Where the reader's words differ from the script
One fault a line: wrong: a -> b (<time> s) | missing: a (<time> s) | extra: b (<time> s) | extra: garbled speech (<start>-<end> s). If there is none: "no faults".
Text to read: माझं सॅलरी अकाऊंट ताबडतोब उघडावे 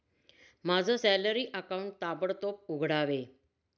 no faults